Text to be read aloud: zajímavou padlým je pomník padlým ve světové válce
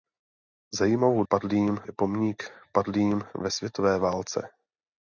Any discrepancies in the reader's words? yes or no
no